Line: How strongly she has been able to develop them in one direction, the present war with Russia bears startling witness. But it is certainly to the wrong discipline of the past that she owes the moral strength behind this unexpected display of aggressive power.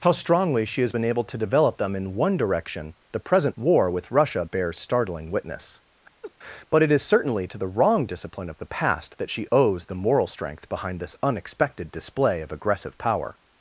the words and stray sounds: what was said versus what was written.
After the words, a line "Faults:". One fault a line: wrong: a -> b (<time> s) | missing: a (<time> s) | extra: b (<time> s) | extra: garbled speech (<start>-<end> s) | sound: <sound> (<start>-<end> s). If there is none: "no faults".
How strongly she has been able to develop them in one direction, the present war with Russia bears startling witness. But it is certainly to the wrong discipline of the past that she owes the moral strength behind this unexpected display of aggressive power.
Faults:
sound: laugh (6.2-6.3 s)